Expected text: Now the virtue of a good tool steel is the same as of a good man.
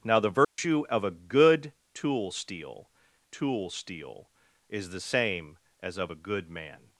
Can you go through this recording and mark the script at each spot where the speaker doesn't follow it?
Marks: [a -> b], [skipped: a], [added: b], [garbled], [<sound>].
Now the virtue [dropout] of a good tool steel [added: tool steel] is the same as of a good man.